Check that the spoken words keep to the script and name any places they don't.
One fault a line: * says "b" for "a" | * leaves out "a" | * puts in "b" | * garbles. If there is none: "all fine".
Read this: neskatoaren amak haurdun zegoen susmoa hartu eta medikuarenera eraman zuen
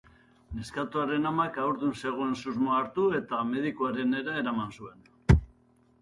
all fine